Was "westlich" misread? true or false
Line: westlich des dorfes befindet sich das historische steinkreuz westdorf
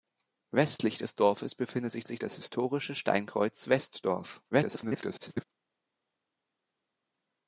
false